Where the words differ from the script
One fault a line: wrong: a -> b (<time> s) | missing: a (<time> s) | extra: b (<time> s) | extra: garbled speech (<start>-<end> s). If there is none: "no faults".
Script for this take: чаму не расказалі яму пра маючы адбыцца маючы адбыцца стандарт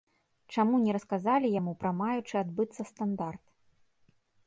missing: маючы адбыцца (2.8 s)